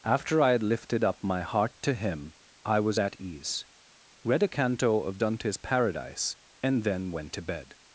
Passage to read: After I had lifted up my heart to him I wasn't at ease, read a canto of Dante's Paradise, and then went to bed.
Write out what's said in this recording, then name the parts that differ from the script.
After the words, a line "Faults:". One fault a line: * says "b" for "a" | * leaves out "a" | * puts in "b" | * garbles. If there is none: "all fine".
After I had lifted up my heart to him I was at ease, read a canto of Dante's Paradise, and then went to bed.
Faults:
* says "was" for "wasn't"